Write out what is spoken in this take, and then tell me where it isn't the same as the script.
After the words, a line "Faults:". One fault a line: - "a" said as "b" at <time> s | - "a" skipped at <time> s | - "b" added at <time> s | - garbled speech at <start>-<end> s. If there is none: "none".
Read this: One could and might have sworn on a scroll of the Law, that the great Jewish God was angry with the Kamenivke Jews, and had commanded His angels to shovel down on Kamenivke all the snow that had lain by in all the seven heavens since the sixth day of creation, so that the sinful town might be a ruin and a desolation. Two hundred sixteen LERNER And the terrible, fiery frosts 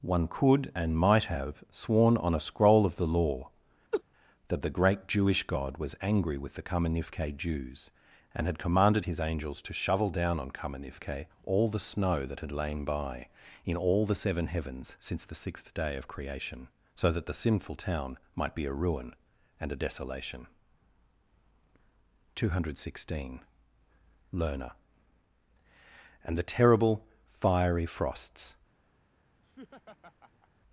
One could and might have sworn on a scroll of the Law, that the great Jewish God was angry with the Kamenivke Jews, and had commanded His angels to shovel down on Kamenivke all the snow that had lain by in all the seven heavens since the sixth day of creation, so that the sinful town might be a ruin and a desolation. Two hundred sixteen LERNER And the terrible, fiery frosts
Faults:
none